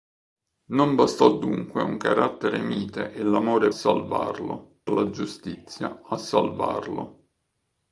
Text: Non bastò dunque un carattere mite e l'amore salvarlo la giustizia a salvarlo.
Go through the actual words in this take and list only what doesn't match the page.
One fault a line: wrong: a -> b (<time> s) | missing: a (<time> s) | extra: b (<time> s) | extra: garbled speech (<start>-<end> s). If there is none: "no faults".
no faults